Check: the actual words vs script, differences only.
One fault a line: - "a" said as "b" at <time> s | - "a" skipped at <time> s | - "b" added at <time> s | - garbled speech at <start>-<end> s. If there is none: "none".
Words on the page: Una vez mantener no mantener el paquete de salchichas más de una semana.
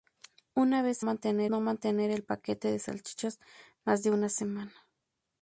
none